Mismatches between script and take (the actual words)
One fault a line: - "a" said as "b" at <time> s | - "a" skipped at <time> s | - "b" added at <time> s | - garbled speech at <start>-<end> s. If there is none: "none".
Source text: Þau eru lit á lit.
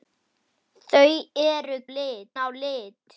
none